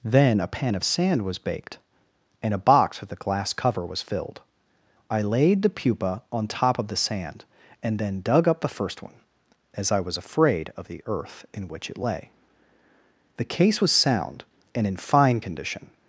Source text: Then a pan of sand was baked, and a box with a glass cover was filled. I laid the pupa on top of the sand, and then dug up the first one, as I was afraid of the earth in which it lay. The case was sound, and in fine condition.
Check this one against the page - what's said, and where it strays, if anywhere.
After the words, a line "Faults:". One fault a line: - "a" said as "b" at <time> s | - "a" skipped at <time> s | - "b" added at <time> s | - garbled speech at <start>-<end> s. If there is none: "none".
Then a pan of sand was baked, and a box with a glass cover was filled. I laid the pupa on top of the sand, and then dug up the first one, as I was afraid of the earth in which it lay. The case was sound, and in fine condition.
Faults:
none